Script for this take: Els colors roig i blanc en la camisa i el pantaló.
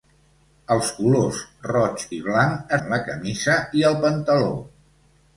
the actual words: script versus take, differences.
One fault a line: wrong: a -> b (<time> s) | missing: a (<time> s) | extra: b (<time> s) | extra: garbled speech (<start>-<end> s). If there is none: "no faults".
no faults